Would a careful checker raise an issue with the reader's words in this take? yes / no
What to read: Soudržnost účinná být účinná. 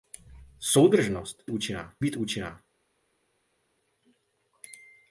no